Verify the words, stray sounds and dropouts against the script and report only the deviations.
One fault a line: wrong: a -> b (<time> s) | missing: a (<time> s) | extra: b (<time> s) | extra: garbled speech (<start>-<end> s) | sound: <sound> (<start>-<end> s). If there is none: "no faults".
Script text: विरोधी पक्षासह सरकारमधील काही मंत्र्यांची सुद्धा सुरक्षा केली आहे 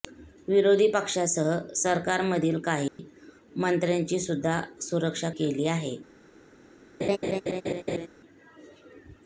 sound: dropout (2.9-3.0 s)
sound: laugh (7.0-8.1 s)